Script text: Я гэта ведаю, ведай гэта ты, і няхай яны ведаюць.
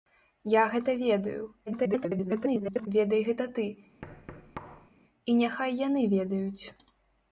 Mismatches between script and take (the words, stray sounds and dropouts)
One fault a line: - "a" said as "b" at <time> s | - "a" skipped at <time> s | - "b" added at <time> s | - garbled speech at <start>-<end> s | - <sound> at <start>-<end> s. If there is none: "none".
- garbled speech at 1.7-2.9 s
- thud at 4.0-4.9 s